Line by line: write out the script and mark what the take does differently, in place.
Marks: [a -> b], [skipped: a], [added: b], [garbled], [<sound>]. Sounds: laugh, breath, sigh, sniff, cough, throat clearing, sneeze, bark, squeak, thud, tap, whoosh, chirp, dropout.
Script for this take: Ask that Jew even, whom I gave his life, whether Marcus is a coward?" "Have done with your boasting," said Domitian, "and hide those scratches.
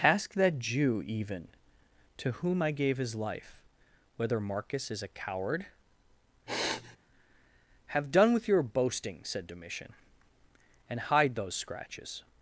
Ask that Jew even, [added: to] whom I gave his life, whether Marcus is a coward?" [sniff] "Have done with your boasting," said Domitian, "and hide those scratches.